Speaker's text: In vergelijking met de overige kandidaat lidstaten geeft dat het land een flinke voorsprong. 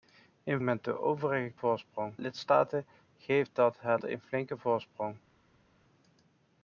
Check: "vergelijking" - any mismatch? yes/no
yes